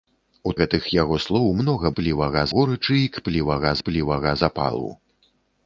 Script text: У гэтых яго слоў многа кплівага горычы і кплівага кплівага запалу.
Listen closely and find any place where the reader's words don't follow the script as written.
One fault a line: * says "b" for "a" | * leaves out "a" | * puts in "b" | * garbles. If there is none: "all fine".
all fine